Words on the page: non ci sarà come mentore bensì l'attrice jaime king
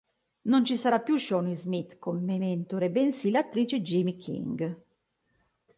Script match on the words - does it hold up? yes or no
no